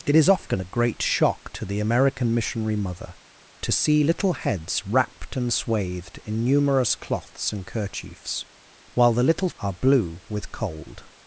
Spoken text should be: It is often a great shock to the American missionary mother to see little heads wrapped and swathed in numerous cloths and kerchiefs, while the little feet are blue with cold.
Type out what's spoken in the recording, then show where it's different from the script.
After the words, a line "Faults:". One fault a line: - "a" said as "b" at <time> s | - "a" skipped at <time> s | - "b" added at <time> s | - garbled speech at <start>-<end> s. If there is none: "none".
It is often a great shock to the American missionary mother to see little heads wrapped and swathed in numerous cloths and kerchiefs, while the little are blue with cold.
Faults:
- "feet" skipped at 9.5 s